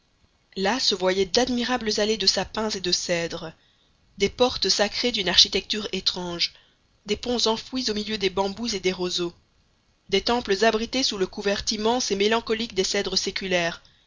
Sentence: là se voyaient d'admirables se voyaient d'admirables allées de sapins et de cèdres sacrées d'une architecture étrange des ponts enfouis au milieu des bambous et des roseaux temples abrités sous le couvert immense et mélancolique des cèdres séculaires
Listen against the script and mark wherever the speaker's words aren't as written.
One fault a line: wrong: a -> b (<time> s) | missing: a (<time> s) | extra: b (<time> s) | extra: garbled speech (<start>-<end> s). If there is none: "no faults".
missing: se voyaient d'admirables (2.0 s)
extra: des portes (4.2 s)
extra: des (10.1 s)